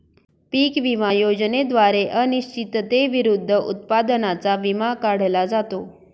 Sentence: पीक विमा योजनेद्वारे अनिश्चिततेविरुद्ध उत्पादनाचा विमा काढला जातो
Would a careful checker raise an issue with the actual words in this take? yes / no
no